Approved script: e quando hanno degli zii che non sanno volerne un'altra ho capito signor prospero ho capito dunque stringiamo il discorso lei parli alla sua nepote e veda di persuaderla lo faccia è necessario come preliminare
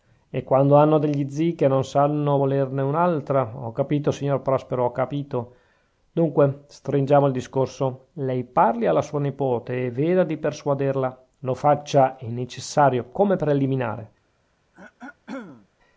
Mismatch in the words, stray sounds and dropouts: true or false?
true